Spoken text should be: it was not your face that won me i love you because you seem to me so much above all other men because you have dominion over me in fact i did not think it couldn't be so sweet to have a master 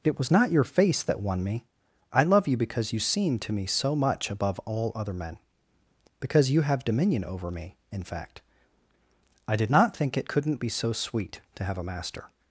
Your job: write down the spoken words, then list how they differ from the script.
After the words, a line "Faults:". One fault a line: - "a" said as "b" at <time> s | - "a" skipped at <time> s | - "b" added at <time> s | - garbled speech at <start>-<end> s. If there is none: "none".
it was not your face that won me i love you because you seem to me so much above all other men because you have dominion over me in fact i did not think it couldn't be so sweet to have a master
Faults:
none